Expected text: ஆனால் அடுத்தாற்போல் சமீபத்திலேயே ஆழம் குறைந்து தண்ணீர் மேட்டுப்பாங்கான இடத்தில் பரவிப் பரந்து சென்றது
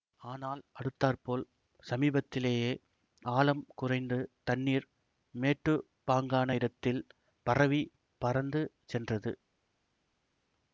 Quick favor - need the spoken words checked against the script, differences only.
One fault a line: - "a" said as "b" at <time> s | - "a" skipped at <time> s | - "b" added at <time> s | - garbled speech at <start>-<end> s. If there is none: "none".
none